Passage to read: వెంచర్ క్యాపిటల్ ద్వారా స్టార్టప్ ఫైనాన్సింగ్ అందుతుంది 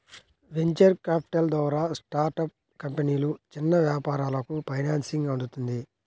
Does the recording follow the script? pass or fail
fail